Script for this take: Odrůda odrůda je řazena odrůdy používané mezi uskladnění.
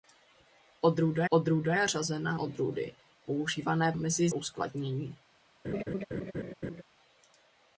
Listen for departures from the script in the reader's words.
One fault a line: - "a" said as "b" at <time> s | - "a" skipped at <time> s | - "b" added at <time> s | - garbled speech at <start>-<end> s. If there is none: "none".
none